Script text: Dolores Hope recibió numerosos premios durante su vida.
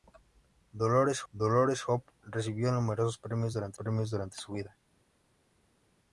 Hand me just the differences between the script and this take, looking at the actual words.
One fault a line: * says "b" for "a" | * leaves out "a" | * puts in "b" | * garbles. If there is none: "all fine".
* puts in "dolores"
* puts in "premios durante"